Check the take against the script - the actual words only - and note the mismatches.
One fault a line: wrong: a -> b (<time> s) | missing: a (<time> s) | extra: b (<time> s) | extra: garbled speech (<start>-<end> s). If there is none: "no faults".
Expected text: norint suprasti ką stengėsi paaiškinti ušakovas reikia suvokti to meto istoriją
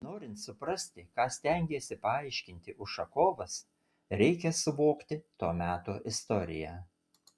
no faults